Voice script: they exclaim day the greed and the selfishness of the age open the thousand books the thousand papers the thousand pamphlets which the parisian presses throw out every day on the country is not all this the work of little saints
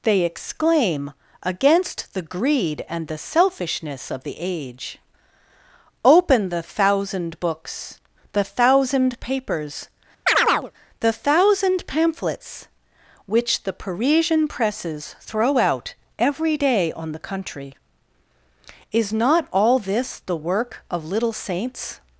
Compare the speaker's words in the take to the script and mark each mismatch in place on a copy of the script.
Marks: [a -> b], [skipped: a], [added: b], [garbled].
they exclaim [day -> against] the greed and the selfishness of the age open the thousand books the thousand papers the thousand pamphlets which the parisian presses throw out every day on the country is not all this the work of little saints